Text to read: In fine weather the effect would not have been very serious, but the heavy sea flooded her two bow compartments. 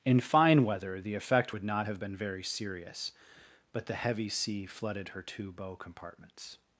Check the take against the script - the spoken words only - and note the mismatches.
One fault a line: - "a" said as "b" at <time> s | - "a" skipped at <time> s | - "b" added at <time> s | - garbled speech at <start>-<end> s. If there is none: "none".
none